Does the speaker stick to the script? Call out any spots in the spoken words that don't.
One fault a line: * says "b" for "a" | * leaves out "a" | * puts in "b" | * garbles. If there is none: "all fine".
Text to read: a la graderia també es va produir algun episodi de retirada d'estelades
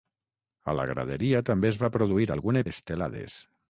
* leaves out "episodi de retirada"